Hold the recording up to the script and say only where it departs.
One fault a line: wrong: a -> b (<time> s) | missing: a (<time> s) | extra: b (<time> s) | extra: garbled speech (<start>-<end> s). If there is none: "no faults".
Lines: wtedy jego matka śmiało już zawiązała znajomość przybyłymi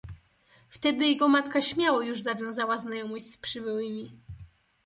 extra: z (3.2 s)